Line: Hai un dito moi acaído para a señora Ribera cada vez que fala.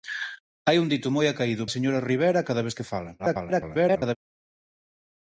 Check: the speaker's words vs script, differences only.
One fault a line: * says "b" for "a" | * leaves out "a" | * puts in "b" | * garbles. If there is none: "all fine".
* leaves out "para"
* garbles